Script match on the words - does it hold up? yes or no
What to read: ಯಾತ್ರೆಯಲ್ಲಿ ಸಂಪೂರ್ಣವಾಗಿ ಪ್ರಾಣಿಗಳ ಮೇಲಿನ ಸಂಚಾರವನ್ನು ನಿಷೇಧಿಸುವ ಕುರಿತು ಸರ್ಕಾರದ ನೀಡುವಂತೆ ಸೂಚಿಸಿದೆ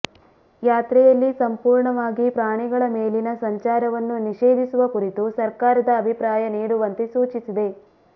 no